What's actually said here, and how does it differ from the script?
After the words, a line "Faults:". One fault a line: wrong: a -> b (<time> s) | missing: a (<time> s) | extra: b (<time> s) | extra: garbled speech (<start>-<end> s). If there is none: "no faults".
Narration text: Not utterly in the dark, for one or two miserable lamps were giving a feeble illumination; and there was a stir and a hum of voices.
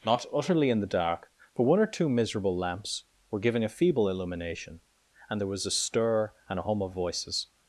Not utterly in the dark, for one or two miserable lamps were giving a feeble illumination; and there was a stir and a hum of voices.
Faults:
no faults